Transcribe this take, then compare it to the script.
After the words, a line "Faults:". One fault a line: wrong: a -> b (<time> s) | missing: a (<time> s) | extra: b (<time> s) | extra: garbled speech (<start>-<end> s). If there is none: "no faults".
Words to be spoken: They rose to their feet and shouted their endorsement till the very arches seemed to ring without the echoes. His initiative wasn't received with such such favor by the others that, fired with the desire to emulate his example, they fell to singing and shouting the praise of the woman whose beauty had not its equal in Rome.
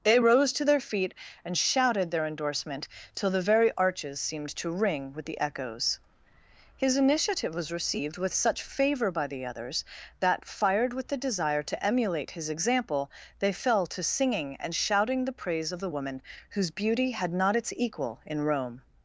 They rose to their feet and shouted their endorsement till the very arches seemed to ring with the echoes. His initiative was received with such favor by the others that, fired with the desire to emulate his example, they fell to singing and shouting the praise of the woman whose beauty had not its equal in Rome.
Faults:
wrong: without -> with (5.1 s)
wrong: wasn't -> was (7.5 s)
missing: such (8.6 s)